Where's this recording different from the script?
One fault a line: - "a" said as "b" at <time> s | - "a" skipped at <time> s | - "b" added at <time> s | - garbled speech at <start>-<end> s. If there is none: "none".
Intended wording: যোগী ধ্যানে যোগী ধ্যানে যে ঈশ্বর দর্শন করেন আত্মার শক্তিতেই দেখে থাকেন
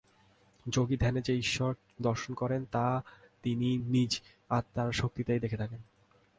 - "যোগী ধ্যানে" skipped at 1.2 s
- "তা তিনি নিজ" added at 2.7 s